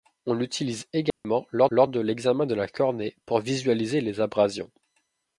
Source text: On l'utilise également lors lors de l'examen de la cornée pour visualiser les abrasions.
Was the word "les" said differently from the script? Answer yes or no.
no